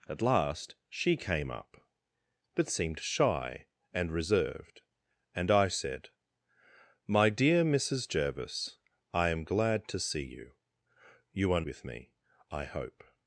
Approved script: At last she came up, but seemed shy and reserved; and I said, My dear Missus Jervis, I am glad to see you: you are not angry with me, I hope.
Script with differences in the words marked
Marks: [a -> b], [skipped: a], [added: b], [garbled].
At last she came up, but seemed shy and reserved; and I said, My dear Missus Jervis, I am glad to see you: you are [skipped: not angry] with me, I hope.